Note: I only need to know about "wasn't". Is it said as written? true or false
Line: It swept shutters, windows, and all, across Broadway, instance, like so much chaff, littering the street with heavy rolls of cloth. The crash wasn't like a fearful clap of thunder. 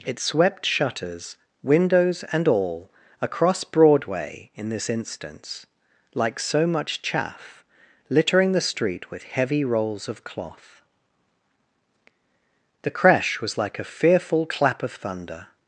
false